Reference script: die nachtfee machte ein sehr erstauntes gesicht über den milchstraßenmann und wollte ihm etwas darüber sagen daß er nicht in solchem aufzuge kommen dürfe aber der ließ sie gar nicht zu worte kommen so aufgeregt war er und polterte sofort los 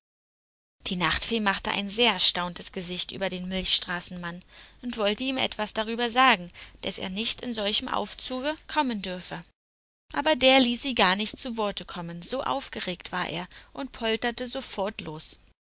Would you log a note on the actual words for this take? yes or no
no